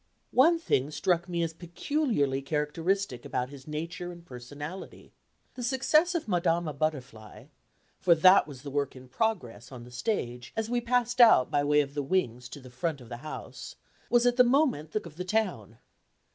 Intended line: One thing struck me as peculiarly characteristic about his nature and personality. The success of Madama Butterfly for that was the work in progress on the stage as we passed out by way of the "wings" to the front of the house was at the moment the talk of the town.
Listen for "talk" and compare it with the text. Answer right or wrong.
wrong